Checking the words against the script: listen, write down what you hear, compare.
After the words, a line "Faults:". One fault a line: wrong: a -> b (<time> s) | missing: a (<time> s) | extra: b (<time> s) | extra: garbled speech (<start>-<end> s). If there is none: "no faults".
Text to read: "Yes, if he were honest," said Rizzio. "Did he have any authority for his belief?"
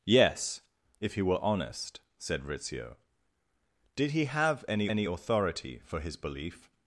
"Yes, if he were honest," said Rizzio. "Did he have any any authority for his belief?"
Faults:
extra: any (4.8 s)